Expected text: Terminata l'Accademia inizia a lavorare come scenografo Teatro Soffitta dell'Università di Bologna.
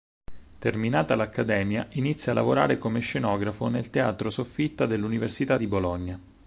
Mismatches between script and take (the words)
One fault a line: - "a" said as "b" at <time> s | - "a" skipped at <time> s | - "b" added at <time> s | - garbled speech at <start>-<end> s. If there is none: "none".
- "nel" added at 3.7 s